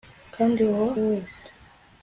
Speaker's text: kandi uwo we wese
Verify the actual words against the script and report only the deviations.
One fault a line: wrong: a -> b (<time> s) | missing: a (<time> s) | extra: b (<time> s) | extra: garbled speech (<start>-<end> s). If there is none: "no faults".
no faults